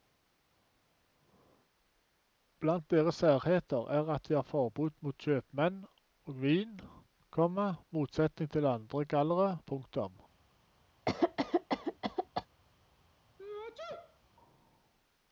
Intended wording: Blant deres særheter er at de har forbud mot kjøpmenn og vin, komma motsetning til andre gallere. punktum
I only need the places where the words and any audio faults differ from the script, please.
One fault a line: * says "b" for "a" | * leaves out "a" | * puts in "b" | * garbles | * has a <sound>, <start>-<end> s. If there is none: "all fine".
* has a cough, 11.1-12.5 s
* has a sneeze, 13.4-14.2 s